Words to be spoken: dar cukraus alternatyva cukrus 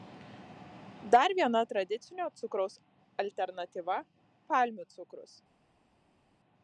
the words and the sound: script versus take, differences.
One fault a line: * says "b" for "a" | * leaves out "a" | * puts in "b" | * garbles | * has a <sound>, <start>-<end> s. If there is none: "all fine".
* puts in "viena tradicinio"
* puts in "palmių"